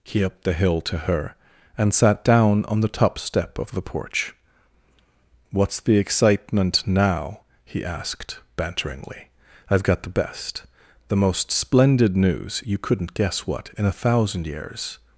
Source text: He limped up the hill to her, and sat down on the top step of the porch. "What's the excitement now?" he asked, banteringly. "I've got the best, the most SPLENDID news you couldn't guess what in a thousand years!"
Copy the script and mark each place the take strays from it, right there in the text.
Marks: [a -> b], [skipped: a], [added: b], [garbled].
He [skipped: limped] up the hill to her, and sat down on the top step of the porch. "What's the excitement now?" he asked, banteringly. "I've got the best, the most SPLENDID news you couldn't guess what in a thousand years!"